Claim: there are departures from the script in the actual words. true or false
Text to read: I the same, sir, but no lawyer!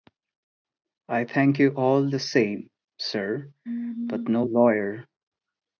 true